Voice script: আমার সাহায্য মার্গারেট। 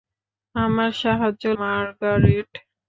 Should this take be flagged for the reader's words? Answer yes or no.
no